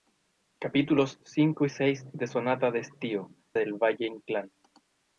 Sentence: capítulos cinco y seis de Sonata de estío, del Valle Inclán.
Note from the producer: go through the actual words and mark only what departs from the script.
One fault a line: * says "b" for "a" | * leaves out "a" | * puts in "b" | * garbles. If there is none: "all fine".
all fine